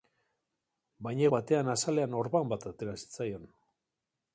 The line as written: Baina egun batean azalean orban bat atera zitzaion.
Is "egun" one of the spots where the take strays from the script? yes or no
yes